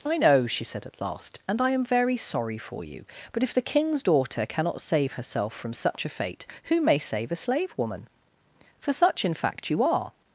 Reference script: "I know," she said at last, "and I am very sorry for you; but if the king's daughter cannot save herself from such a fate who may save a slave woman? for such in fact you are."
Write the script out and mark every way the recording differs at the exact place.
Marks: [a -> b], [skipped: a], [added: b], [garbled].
"I know," she said at last, "and I am very sorry for you; but if the king's daughter cannot save herself from such a fate who may save a slave woman? for such in fact you are."